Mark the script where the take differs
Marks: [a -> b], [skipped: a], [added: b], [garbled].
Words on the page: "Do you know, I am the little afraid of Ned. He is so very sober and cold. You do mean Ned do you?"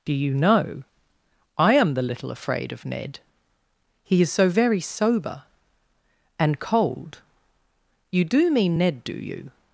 "Do you know, I am the little afraid of Ned. He is so very sober and cold. You do mean Ned do you?"